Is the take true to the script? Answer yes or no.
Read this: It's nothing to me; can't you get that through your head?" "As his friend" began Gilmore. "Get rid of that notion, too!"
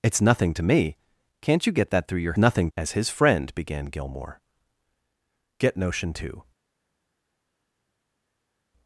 no